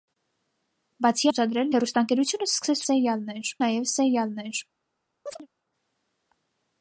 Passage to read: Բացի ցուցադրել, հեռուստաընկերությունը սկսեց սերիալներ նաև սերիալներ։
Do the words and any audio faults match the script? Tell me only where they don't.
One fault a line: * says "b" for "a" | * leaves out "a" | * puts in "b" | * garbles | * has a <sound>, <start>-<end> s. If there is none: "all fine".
* has a chirp, 5.3-5.5 s